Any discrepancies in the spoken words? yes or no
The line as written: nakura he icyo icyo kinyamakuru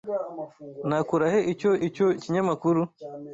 no